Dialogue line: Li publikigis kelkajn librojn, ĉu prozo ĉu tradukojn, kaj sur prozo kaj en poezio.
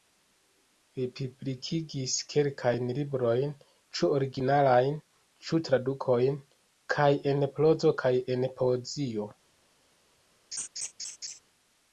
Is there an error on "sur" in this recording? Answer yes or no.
yes